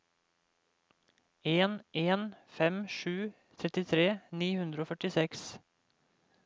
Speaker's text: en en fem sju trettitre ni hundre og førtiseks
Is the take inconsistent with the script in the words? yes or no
no